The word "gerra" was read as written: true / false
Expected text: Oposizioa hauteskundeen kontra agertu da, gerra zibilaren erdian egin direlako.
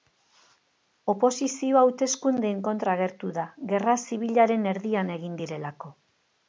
true